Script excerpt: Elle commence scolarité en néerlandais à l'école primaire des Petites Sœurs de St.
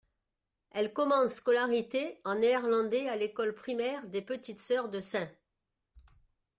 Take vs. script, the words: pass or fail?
pass